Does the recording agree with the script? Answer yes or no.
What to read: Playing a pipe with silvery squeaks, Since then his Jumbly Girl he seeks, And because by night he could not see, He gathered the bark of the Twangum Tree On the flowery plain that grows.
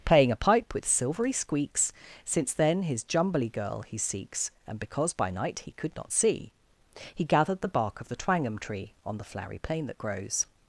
yes